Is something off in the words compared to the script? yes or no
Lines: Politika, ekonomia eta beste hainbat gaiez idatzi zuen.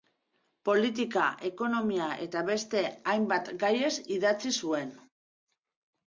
no